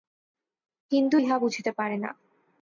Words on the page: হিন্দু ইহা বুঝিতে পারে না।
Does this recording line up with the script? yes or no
yes